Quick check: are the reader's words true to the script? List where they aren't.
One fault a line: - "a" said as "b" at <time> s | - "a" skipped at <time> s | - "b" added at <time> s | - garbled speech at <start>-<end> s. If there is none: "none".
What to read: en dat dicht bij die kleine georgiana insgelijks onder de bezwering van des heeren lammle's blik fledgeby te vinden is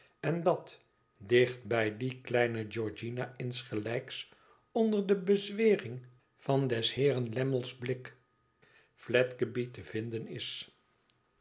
none